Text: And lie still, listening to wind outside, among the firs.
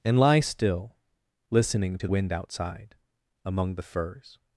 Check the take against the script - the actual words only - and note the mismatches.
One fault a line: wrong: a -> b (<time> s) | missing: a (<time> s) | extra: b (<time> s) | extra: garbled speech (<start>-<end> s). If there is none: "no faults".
no faults